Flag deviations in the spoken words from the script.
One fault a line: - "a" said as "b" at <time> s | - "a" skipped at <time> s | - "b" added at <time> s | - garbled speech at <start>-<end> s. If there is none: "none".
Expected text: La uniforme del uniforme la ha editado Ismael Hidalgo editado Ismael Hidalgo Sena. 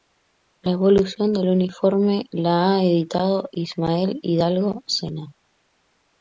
- "uniforme" said as "evolución" at 0.7 s
- "editado Ismael Hidalgo" skipped at 4.8 s